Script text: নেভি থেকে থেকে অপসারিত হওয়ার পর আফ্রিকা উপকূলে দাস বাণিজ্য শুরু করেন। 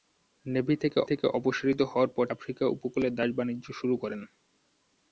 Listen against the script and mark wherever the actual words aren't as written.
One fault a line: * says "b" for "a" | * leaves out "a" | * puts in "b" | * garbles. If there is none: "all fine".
all fine